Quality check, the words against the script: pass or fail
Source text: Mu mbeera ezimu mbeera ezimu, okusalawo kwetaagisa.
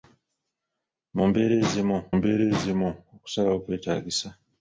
pass